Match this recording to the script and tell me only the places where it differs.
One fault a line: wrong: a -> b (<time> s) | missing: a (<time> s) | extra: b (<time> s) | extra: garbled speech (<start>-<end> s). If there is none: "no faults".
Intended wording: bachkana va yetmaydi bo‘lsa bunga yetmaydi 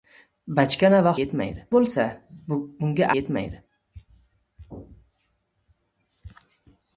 no faults